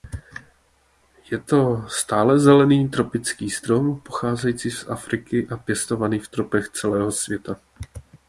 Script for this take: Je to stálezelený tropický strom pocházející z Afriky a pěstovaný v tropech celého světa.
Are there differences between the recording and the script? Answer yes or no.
no